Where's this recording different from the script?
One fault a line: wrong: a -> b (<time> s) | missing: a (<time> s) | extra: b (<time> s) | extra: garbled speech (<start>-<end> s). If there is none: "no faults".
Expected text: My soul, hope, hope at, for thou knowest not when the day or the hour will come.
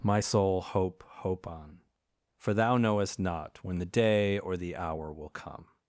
wrong: at -> on (1.5 s)